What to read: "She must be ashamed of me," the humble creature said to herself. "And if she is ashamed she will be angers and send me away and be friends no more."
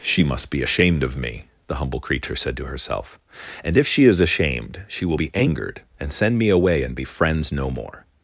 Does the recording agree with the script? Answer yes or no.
no